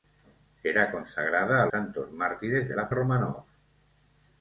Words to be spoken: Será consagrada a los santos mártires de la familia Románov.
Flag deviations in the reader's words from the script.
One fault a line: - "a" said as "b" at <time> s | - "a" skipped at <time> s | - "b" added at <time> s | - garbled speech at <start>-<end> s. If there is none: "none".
- "los" skipped at 1.7 s
- "familia" skipped at 2.9 s